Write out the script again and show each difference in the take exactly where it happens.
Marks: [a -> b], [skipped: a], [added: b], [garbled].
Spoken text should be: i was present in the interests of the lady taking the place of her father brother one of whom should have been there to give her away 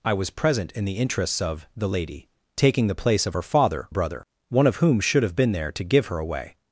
i was present in the interests of the lady taking the place of her father brother one of whom should have been there to give her away